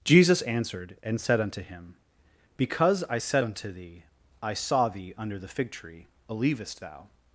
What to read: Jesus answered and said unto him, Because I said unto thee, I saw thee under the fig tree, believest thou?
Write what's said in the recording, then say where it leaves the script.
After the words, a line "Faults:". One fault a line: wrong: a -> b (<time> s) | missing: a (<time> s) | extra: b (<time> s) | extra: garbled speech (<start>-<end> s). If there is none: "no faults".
Jesus answered and said unto him, Because I said unto thee, I saw thee under the fig tree, believest thou?
Faults:
no faults